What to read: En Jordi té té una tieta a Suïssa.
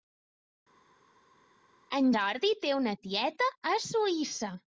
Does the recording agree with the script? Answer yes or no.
no